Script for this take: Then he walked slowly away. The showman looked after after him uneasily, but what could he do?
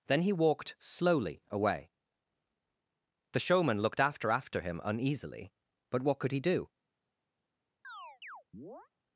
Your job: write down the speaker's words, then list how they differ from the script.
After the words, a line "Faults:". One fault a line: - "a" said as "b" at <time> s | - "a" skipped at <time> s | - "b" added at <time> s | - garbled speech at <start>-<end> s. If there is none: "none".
Then he walked slowly away. The showman looked after after him uneasily, but what could he do?
Faults:
none